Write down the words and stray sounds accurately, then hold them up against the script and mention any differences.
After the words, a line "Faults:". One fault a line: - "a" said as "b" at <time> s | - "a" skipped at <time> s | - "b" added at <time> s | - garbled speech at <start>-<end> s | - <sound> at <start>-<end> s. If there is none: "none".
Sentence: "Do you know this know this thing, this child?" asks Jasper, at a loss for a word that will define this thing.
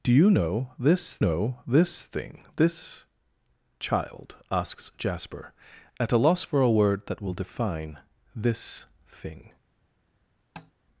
"Do you know this know this thing, this child?" asks Jasper, at a loss for a word that will define this thing.
Faults:
- tap at 10.6-10.7 s